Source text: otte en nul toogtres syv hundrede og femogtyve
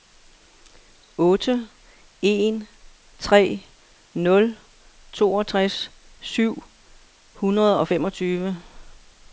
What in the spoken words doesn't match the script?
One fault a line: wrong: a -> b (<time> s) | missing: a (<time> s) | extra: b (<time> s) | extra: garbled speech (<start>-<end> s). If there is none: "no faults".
extra: tre (3.2 s)